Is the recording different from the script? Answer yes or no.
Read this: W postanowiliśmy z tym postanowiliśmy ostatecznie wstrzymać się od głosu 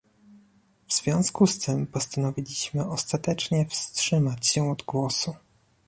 yes